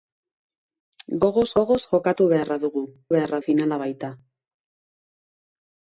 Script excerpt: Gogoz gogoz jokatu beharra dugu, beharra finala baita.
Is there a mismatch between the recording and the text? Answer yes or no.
no